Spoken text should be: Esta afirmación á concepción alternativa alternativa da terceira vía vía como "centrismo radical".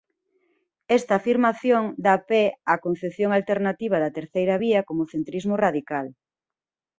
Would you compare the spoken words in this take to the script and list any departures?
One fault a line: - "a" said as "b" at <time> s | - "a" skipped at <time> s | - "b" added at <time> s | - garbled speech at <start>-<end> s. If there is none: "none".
- "dá pé" added at 2.0 s
- "alternativa" skipped at 4.0 s
- "vía" skipped at 4.8 s